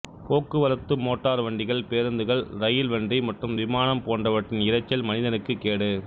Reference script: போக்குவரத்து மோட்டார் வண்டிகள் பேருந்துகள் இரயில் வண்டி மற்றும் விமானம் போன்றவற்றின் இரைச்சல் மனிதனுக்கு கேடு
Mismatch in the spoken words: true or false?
false